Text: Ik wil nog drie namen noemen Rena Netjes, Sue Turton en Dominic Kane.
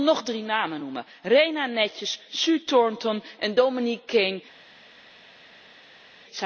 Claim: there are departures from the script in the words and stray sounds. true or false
false